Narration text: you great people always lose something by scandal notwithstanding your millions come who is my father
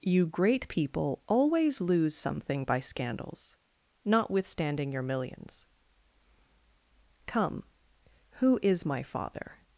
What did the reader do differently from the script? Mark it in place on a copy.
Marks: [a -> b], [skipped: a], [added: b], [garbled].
you great people always lose something by [scandal -> scandals] notwithstanding your millions come who is my father